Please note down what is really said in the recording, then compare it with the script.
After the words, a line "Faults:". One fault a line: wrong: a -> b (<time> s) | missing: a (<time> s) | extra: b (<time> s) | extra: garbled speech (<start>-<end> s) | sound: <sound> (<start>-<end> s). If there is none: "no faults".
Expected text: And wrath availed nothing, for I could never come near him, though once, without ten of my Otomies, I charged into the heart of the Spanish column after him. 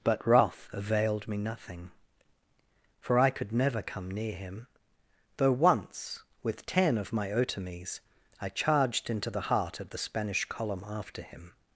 But wrath availed me nothing, for I could never come near him, though once, with ten of my Otomies, I charged into the heart of the Spanish column after him.
Faults:
wrong: And -> But (0.0 s)
extra: me (1.3 s)
wrong: without -> with (6.4 s)